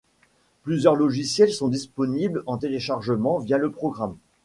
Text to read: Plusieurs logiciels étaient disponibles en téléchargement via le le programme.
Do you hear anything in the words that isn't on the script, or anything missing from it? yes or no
yes